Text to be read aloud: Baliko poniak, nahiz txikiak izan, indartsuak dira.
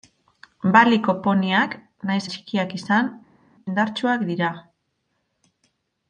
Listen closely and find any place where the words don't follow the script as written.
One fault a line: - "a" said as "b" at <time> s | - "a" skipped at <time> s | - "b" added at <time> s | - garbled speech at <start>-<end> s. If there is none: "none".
none